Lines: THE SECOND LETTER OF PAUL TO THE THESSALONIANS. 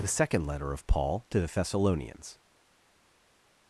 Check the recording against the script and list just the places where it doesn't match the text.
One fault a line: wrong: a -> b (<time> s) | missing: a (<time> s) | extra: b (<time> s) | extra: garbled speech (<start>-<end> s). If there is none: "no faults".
no faults